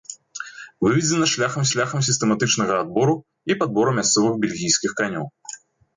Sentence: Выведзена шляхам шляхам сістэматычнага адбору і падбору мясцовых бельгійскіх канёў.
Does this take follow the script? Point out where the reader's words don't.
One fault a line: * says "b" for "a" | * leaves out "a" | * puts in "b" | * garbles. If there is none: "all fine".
all fine